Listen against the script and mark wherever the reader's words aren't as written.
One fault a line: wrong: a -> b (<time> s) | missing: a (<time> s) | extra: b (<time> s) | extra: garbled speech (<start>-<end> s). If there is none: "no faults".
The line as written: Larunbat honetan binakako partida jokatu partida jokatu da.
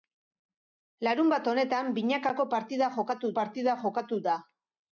no faults